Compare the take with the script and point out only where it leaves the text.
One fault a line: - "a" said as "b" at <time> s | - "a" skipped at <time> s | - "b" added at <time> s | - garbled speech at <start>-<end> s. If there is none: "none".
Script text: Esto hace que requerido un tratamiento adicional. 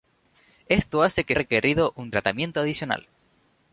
none